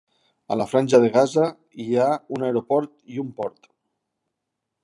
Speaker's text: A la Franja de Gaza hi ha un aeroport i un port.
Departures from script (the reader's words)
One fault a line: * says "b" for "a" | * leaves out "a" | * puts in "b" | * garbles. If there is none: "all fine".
all fine